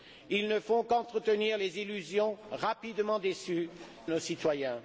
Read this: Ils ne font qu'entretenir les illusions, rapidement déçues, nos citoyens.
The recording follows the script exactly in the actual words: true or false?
true